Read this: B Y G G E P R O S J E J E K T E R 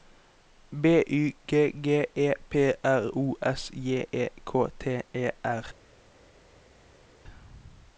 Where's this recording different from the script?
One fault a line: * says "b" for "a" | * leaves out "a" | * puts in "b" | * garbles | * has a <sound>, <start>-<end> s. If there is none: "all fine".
* leaves out "J E"